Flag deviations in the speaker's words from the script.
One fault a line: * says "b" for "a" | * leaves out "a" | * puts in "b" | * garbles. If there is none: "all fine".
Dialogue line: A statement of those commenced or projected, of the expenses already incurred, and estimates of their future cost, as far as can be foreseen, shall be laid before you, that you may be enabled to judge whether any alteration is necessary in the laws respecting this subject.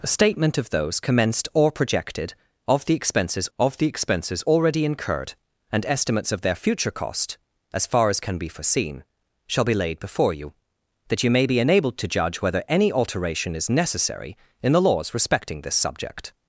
* puts in "of the expenses"